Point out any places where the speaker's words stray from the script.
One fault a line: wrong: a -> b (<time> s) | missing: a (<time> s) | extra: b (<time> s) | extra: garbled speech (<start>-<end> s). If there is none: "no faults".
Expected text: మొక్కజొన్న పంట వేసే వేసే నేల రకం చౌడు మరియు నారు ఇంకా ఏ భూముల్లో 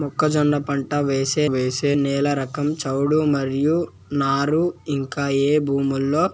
no faults